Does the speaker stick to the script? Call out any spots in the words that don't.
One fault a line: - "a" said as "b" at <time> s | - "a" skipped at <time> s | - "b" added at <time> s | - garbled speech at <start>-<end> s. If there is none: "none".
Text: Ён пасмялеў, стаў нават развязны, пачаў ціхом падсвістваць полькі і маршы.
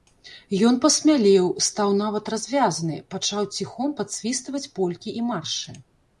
none